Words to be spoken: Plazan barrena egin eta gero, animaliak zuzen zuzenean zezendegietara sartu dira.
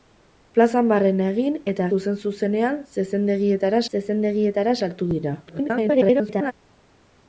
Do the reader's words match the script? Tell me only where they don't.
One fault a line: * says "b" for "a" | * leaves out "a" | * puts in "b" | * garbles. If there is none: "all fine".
* leaves out "gero animaliak"
* puts in "zezendegietara"
* garbles